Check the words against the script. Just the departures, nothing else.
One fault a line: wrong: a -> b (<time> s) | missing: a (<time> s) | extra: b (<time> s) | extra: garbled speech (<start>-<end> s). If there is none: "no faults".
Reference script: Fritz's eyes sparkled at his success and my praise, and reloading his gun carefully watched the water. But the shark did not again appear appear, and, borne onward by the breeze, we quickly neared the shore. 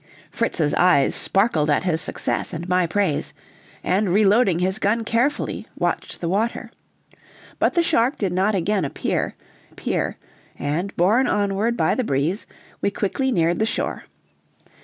no faults